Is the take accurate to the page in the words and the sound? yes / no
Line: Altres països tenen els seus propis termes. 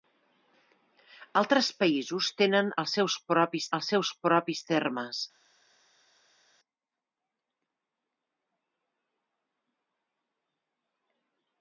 no